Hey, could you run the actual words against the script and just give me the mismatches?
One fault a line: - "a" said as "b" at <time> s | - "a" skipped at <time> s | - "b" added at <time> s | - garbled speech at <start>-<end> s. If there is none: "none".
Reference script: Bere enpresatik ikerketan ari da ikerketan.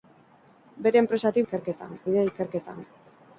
none